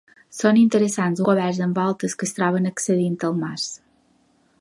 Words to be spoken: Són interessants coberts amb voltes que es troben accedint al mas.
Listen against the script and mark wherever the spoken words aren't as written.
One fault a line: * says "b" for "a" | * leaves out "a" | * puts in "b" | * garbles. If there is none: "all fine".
all fine